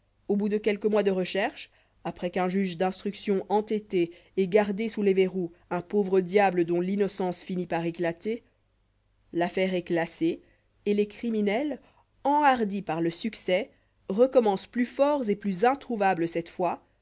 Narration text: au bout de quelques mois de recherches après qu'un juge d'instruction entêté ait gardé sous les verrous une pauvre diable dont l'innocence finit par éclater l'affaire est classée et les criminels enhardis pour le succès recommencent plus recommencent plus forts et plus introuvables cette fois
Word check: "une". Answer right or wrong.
wrong